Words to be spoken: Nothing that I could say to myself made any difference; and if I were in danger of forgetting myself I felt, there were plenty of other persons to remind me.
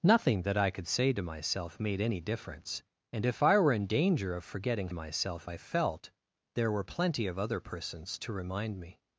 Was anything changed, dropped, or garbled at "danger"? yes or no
no